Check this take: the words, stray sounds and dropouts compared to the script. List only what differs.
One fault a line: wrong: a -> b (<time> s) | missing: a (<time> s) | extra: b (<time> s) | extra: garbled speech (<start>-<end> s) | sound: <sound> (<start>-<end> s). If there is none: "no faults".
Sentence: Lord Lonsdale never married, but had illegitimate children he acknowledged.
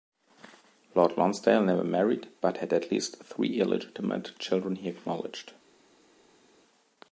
extra: at least three (2.7 s)